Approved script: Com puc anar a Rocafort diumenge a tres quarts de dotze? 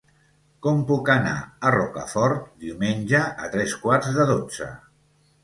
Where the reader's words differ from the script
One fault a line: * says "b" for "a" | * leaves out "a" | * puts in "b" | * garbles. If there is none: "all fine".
all fine